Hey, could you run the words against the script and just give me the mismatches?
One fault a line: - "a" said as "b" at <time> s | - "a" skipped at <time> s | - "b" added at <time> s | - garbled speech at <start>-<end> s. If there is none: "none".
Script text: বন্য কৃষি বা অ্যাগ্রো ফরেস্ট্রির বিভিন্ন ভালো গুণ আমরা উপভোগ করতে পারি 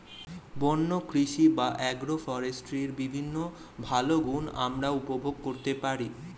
none